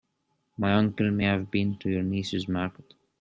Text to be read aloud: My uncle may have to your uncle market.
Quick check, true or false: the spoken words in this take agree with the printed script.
false